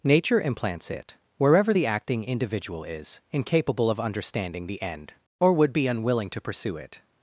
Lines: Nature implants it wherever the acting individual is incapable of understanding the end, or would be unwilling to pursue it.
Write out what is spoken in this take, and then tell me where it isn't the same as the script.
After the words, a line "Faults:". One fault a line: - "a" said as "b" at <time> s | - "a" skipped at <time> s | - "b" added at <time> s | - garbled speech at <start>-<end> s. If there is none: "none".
Nature implants it wherever the acting individual is incapable of understanding the end, or would be unwilling to pursue it.
Faults:
none